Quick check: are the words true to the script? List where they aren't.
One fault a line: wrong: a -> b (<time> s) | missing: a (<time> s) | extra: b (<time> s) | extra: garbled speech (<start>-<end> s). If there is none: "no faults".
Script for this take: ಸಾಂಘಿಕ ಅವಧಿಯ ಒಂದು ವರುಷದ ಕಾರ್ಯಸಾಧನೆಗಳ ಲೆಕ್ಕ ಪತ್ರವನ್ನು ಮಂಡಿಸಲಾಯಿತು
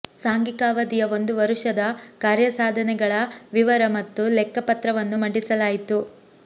extra: ವಿವರ ಮತ್ತು (3.5 s)